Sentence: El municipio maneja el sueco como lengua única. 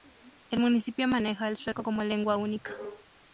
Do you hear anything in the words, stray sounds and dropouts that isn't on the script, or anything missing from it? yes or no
no